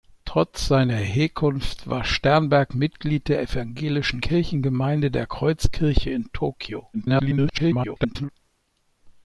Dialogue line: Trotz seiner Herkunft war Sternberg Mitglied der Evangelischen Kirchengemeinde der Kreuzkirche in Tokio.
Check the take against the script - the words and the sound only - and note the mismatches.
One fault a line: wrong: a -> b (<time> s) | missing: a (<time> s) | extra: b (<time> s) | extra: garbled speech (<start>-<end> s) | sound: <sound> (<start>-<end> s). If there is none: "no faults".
extra: garbled speech (6.9-8.3 s)